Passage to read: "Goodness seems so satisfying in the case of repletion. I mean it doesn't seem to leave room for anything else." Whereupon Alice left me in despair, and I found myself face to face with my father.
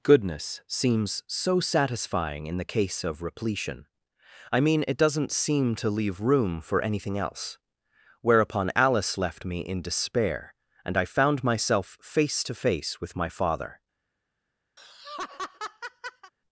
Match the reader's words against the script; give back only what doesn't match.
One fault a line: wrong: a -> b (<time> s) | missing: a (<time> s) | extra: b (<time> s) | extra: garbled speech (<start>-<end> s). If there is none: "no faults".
no faults